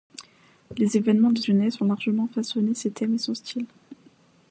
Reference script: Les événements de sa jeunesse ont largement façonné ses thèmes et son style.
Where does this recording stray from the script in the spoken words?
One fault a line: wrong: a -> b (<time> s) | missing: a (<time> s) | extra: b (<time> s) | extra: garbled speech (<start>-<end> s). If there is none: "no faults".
missing: sa (1.4 s)